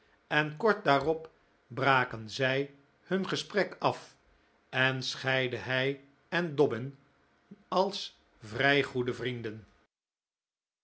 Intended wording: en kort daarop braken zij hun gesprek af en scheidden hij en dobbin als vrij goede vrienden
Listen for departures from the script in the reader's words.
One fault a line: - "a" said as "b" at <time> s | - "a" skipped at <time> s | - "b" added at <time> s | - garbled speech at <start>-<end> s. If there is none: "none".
none